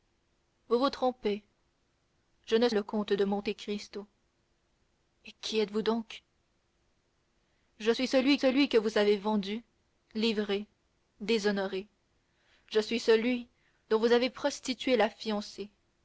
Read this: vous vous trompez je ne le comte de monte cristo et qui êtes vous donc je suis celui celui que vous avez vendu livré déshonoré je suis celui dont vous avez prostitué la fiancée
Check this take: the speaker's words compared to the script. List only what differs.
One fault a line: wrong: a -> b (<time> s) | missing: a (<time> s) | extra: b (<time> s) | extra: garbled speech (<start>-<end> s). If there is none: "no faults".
no faults